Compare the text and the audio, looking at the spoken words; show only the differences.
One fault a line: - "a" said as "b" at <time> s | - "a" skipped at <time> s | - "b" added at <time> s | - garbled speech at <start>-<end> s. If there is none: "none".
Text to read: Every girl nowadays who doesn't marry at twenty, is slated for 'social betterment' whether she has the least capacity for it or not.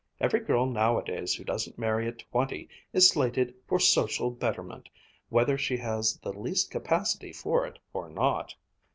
none